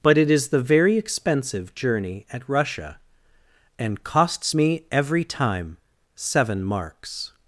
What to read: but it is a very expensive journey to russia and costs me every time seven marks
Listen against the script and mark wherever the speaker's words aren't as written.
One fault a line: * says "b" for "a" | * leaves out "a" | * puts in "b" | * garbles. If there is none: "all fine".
* says "the" for "a"
* says "at" for "to"